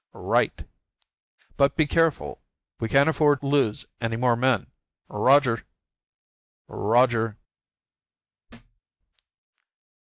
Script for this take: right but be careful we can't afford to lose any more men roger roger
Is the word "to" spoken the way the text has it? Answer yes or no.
no